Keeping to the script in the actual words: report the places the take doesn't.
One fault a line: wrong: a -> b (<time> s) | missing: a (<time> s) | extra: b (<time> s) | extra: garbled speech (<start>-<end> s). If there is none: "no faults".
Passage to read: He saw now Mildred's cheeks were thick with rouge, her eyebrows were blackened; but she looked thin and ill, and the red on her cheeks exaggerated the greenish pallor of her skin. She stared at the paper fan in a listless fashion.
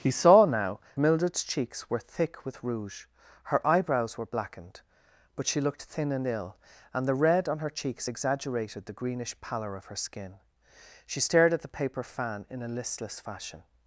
no faults